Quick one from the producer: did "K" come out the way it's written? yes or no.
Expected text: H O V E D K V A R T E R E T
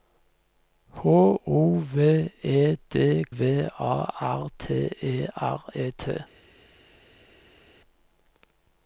no